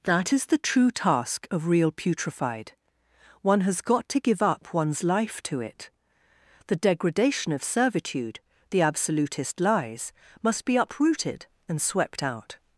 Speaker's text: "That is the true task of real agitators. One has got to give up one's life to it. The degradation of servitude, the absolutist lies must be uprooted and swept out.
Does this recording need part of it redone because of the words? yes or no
yes